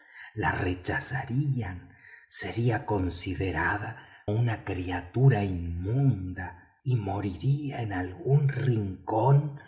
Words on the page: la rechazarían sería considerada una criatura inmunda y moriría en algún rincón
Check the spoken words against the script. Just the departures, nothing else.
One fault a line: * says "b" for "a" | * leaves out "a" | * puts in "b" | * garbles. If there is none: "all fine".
all fine